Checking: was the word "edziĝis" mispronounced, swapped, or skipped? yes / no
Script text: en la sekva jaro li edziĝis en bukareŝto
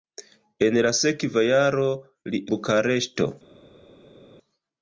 yes